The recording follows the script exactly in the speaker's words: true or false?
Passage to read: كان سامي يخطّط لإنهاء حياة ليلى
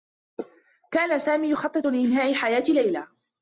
true